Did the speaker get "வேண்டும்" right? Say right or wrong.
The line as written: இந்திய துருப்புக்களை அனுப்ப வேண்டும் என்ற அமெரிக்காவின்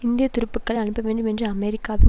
right